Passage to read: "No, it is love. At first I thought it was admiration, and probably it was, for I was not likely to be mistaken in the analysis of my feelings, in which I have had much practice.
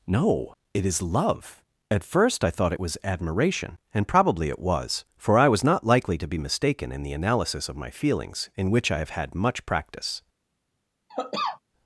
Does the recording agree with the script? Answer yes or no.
yes